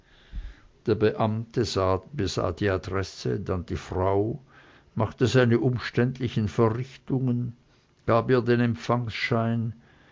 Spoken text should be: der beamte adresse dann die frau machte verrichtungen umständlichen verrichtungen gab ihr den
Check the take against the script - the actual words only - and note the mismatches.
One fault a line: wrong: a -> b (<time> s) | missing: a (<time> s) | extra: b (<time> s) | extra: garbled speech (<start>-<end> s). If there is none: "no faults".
extra: besah die (2.1 s)
wrong: verrichtungen -> seine (5.3 s)